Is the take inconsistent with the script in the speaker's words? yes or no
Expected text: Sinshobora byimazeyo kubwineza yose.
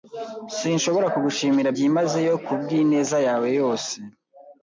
yes